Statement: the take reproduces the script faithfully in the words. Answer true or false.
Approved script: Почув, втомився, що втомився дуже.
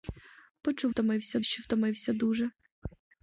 true